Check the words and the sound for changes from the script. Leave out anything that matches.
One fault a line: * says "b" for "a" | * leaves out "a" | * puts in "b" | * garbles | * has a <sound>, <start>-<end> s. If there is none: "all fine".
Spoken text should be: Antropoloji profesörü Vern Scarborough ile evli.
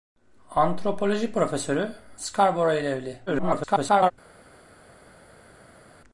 * leaves out "Vern"
* garbles